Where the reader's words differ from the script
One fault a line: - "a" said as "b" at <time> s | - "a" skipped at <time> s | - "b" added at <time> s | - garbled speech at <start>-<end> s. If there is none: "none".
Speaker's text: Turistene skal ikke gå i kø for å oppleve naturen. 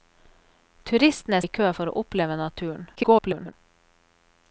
- "skal ikke gå" skipped at 1.4 s
- garbled speech at 3.0-3.5 s